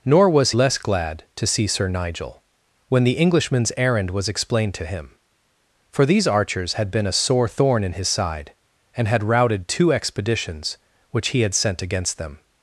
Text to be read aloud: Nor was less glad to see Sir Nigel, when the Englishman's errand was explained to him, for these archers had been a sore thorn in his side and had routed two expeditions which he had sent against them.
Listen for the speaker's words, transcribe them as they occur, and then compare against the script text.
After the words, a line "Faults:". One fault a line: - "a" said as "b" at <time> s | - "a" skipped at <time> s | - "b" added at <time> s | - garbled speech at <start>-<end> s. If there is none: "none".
Nor was less glad to see Sir Nigel, when the Englishman's errand was explained to him, for these archers had been a sore thorn in his side and had routed two expeditions which he had sent against them.
Faults:
none